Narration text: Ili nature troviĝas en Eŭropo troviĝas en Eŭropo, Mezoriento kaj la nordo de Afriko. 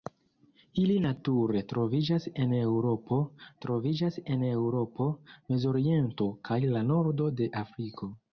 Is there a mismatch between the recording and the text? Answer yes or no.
no